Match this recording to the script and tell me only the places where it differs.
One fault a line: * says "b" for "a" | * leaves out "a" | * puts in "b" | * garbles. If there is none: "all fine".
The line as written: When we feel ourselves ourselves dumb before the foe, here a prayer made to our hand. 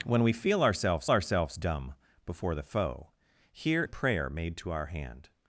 all fine